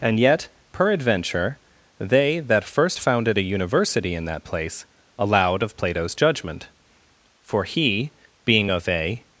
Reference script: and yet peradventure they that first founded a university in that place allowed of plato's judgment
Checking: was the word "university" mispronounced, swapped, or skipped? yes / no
no